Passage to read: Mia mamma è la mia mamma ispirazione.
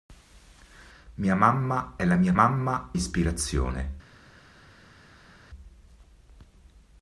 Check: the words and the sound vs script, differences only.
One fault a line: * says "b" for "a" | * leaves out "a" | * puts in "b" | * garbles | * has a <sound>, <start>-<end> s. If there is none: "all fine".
all fine